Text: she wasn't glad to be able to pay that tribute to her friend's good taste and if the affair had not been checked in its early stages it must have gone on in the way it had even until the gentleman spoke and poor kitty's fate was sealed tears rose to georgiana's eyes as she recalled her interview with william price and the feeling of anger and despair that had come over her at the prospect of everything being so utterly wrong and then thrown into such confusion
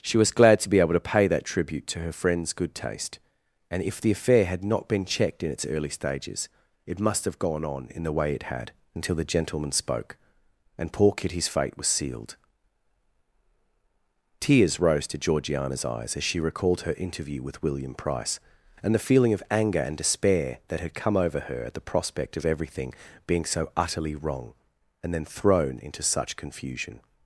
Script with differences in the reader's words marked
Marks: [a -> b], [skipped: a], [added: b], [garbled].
she [wasn't -> was] glad to be able to pay that tribute to her friend's good taste and if the affair had not been checked in its early stages it must have gone on in the way it had [skipped: even] until the gentleman spoke and poor kitty's fate was sealed tears rose to georgiana's eyes as she recalled her interview with william price and the feeling of anger and despair that had come over her at the prospect of everything being so utterly wrong and then thrown into such confusion